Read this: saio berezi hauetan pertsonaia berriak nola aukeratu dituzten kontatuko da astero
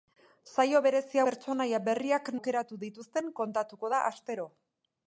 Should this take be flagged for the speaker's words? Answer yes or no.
yes